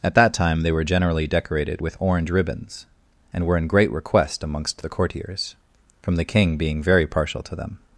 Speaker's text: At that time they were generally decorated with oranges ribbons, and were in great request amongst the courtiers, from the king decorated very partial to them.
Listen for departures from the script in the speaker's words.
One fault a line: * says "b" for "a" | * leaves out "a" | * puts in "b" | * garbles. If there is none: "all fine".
* says "orange" for "oranges"
* says "being" for "decorated"